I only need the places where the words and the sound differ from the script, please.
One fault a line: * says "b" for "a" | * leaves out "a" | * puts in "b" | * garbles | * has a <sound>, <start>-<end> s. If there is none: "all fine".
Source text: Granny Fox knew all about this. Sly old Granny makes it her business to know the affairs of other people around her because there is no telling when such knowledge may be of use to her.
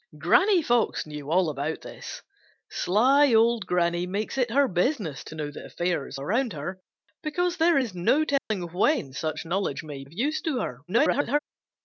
* leaves out "of other people"
* has a dropout, 8.4-8.5 s
* leaves out "be"
* garbles